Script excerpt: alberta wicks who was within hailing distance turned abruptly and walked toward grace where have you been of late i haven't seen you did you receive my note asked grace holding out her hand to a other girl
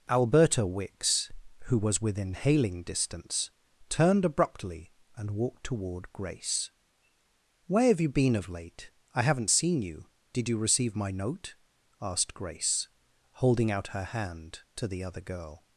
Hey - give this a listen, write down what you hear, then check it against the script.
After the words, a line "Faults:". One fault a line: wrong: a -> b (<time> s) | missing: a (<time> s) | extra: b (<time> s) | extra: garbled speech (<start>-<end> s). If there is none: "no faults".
alberta wicks who was within hailing distance turned abruptly and walked toward grace where have you been of late i haven't seen you did you receive my note asked grace holding out her hand to the other girl
Faults:
wrong: a -> the (14.9 s)